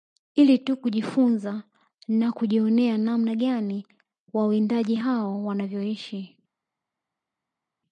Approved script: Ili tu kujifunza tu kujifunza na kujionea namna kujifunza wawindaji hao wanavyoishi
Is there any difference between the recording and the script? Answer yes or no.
yes